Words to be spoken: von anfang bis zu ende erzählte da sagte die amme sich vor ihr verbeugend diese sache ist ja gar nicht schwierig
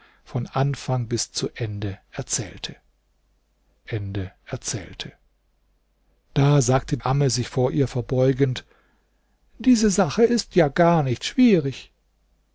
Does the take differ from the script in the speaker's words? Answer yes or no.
yes